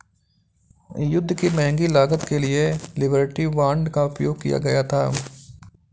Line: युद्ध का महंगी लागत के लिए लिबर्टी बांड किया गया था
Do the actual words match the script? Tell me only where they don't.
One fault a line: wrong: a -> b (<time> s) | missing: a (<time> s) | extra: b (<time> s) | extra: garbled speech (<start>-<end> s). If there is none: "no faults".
wrong: का -> की (1.3 s)
extra: का उपयोग (3.9 s)